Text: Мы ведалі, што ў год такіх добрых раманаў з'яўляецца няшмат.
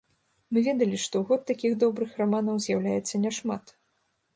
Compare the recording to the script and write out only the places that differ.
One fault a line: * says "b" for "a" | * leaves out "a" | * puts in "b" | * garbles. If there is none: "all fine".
all fine